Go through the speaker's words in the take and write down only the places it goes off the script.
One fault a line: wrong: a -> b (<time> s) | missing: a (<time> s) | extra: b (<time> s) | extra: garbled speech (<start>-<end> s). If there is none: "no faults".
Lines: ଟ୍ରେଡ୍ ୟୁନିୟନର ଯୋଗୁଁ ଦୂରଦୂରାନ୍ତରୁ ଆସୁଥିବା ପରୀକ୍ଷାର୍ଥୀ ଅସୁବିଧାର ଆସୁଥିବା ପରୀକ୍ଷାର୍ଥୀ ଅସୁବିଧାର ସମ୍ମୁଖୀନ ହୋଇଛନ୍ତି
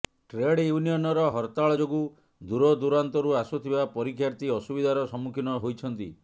extra: ହରତାଳ (1.3 s)
missing: ଆସୁଥିବା ପରୀକ୍ଷାର୍ଥୀ ଅସୁବିଧାର (5.1 s)